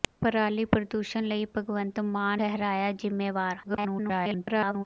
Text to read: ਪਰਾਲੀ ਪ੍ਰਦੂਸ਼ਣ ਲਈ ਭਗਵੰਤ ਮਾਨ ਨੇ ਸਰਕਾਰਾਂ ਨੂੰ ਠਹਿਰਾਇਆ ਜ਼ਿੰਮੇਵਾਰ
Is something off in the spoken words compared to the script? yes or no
yes